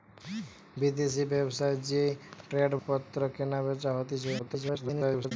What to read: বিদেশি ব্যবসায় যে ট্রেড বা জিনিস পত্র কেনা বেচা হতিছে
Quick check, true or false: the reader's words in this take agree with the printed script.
false